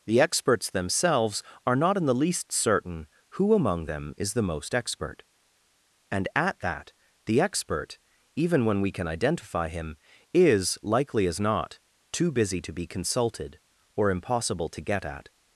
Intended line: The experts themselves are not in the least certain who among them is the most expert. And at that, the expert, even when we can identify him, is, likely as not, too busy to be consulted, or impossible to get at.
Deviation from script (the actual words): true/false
false